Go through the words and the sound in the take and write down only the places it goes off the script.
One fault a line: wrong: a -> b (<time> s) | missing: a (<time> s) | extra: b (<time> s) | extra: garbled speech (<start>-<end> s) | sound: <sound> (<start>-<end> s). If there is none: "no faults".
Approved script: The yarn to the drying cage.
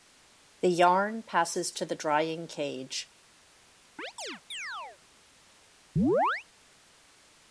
extra: passes (1.2 s)
sound: chirp (4.0-5.0 s)
sound: chirp (6.0-6.5 s)